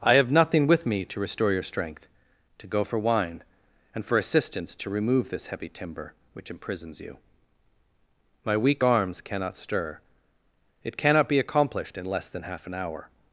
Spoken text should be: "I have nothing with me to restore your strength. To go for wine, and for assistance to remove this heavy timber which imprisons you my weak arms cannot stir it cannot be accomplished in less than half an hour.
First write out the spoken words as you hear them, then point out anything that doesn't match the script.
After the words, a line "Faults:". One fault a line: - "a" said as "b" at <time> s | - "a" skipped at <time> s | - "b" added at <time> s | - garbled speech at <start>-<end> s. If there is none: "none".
"I have nothing with me to restore your strength. To go for wine, and for assistance to remove this heavy timber which imprisons you my weak arms cannot stir it cannot be accomplished in less than half an hour.
Faults:
none